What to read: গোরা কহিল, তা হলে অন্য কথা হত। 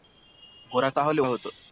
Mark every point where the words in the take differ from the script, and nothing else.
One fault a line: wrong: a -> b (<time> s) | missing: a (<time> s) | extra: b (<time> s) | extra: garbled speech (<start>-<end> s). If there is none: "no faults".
missing: কহিল (0.9 s)
missing: অন্য কথা (1.2 s)